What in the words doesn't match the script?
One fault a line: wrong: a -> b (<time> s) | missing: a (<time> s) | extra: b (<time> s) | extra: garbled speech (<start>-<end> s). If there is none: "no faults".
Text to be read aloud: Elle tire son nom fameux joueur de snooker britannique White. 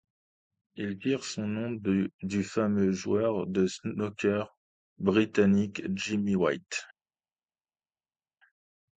wrong: Elle -> Il (0.8 s)
extra: du (2.2 s)
extra: Jimmy (5.9 s)